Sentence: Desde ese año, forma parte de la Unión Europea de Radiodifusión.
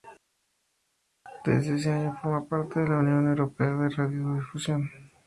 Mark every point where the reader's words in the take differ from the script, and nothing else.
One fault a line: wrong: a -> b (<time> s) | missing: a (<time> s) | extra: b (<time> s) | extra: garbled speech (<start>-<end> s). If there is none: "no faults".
no faults